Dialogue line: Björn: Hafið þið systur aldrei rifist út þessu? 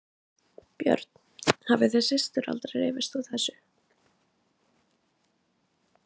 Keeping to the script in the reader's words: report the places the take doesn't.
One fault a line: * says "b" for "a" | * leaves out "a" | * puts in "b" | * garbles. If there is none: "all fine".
all fine